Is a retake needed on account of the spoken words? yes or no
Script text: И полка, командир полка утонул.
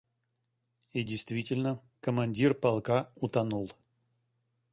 yes